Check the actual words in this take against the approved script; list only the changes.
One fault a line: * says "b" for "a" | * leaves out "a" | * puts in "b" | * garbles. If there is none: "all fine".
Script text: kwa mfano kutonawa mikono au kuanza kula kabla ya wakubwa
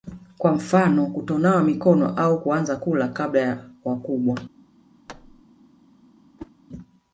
all fine